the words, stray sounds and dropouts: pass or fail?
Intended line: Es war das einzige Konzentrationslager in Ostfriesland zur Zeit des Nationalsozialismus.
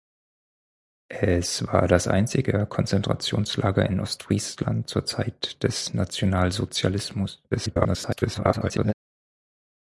fail